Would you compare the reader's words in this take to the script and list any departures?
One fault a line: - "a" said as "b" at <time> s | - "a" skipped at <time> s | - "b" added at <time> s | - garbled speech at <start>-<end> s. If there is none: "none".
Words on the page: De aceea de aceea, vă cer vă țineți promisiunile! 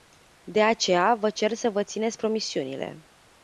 - "de aceea" skipped at 1.1 s
- "să" added at 1.5 s